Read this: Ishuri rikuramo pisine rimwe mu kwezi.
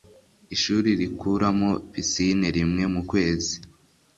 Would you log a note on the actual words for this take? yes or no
no